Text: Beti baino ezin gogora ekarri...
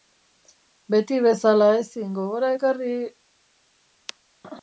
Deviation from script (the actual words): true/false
true